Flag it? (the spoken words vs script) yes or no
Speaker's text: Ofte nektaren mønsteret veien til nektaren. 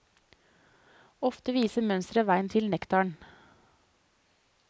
yes